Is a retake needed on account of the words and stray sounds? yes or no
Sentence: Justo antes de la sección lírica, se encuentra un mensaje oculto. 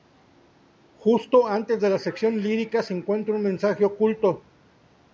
no